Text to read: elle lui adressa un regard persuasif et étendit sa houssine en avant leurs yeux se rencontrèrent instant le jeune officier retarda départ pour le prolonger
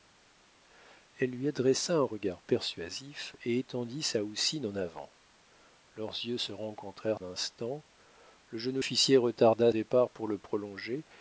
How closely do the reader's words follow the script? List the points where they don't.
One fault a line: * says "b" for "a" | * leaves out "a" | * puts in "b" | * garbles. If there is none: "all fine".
all fine